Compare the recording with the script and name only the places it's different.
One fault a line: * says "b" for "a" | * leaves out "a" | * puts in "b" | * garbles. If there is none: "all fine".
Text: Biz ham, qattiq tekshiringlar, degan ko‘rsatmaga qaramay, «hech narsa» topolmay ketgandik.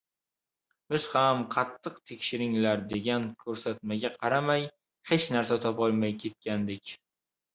all fine